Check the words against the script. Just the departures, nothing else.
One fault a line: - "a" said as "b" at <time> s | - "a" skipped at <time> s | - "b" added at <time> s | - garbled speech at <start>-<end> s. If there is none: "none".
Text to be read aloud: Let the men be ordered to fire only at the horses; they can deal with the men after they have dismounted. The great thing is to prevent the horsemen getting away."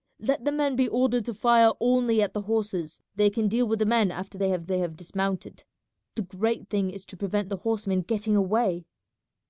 - "they have" added at 4.7 s